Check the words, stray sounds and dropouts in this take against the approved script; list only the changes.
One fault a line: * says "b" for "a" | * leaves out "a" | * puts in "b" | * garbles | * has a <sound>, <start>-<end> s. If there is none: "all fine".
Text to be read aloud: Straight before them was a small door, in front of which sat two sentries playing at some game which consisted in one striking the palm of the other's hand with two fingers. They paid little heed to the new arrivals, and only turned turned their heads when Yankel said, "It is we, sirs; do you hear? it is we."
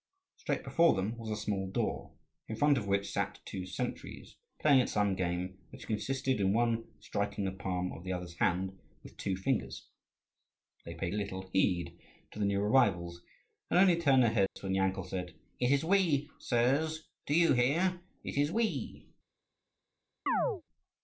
* leaves out "turned"
* has a dropout, 14.5-14.6 s
* has a chirp, 20.3-20.6 s